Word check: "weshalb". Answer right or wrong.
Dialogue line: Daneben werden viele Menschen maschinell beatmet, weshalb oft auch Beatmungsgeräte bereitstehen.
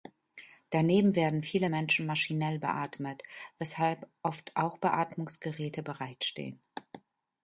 right